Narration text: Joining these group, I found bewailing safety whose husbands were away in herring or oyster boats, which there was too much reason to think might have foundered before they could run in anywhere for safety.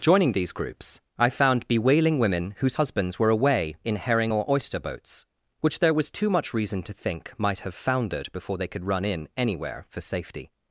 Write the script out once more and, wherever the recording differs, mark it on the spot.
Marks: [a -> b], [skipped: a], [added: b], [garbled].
Joining these [group, -> groups] I found bewailing [safety -> women] whose husbands were away in herring or oyster boats, which there was too much reason to think might have foundered before they could run in anywhere for safety.